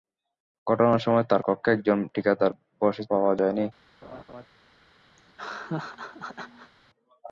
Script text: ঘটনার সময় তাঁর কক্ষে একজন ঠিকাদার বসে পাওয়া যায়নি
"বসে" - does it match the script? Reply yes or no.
yes